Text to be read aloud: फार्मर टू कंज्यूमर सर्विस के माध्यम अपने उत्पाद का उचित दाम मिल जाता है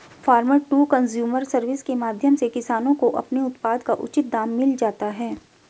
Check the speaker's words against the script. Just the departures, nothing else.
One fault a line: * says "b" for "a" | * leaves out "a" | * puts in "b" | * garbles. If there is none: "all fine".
* puts in "से किसानों को"